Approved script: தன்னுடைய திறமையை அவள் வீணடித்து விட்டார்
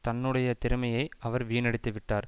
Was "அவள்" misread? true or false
true